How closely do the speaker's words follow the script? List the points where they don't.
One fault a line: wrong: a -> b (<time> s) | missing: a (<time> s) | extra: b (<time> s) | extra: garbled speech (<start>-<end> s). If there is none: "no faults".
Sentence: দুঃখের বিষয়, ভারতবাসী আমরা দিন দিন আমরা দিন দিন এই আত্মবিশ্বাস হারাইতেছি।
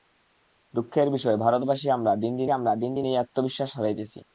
no faults